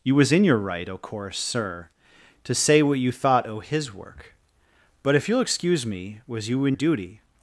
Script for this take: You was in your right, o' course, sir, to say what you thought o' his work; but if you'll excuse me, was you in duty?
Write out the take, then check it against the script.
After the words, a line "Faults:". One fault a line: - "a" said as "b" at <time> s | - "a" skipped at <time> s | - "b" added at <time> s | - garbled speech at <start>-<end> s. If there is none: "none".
You was in your right, o' course, sir, to say what you thought o' his work; but if you'll excuse me, was you in duty?
Faults:
none